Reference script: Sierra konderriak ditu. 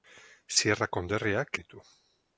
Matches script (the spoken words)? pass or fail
pass